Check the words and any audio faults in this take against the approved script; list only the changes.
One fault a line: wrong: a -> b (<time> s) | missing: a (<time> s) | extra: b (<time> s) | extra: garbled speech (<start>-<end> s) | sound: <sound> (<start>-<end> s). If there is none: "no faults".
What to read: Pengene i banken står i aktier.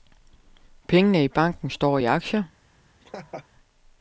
sound: laugh (3.0-3.5 s)